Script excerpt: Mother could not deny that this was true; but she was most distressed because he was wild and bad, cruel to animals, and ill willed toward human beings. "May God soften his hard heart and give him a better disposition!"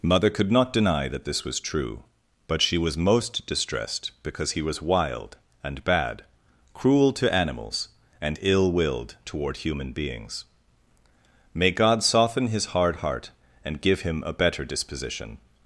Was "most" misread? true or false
false